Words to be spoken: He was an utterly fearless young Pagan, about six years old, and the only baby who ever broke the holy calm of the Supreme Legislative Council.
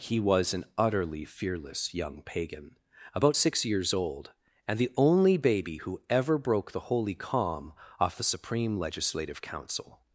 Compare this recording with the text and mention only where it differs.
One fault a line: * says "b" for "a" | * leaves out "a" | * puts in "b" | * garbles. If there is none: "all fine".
* says "off" for "of"